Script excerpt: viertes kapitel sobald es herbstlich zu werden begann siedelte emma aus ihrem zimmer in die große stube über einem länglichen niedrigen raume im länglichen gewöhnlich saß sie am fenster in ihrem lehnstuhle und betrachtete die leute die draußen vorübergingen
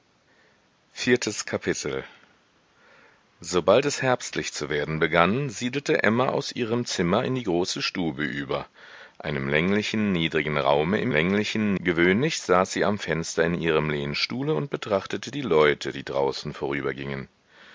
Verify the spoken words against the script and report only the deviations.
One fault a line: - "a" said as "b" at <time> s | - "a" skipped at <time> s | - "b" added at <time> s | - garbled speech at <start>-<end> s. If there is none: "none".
none